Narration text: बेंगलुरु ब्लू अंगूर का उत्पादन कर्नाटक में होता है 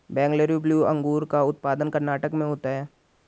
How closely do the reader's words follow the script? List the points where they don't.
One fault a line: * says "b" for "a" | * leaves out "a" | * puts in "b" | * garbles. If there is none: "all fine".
all fine